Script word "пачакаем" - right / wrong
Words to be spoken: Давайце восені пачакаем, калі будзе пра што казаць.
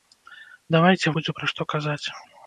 wrong